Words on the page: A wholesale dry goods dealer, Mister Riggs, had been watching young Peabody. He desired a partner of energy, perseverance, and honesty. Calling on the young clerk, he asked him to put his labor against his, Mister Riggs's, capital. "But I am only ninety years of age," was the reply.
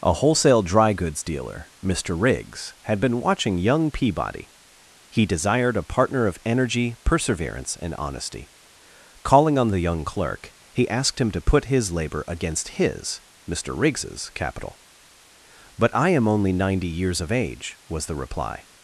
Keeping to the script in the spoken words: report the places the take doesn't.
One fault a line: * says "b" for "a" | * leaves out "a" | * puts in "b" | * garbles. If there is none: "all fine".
all fine